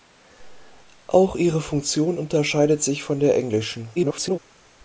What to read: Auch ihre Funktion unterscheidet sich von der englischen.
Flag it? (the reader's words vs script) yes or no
yes